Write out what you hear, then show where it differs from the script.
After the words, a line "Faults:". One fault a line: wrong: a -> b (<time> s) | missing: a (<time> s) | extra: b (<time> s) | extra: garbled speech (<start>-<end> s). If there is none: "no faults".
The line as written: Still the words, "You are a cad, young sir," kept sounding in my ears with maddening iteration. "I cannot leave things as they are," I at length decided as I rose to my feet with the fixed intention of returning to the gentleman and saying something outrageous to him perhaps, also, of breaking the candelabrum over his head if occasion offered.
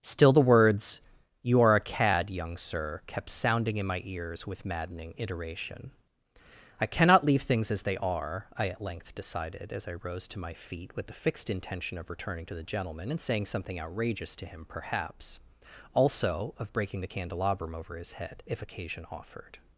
Still the words, "You are a cad, young sir," kept sounding in my ears with maddening iteration. "I cannot leave things as they are," I at length decided as I rose to my feet with the fixed intention of returning to the gentleman and saying something outrageous to him perhaps, also, of breaking the candelabrum over his head if occasion offered.
Faults:
no faults